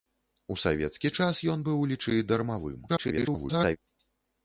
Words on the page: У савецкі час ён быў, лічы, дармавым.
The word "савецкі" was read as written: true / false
true